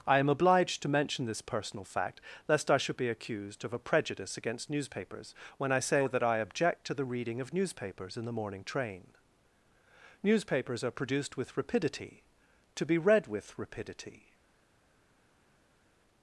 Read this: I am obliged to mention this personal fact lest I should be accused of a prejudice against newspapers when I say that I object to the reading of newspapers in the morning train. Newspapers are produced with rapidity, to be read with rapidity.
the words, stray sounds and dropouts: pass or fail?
pass